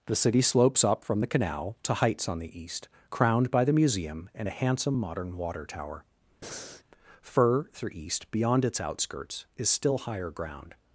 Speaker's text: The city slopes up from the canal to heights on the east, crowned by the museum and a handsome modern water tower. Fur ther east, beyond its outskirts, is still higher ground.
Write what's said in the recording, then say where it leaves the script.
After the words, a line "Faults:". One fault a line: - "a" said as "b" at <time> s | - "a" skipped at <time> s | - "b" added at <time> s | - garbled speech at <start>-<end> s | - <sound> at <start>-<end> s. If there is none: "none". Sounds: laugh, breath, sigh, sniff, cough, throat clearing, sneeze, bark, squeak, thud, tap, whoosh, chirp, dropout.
The city slopes up from the canal to heights on the east, crowned by the museum and a handsome modern water tower. Fur through east, beyond its outskirts, is still higher ground.
Faults:
- breath at 6.4-6.8 s
- "ther" said as "through" at 7.7 s